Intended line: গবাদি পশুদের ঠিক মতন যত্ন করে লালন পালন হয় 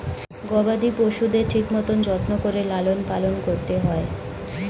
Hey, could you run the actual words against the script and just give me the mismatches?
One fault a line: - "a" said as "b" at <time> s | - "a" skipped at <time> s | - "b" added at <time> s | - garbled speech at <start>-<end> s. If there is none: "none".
- "করতে" added at 3.5 s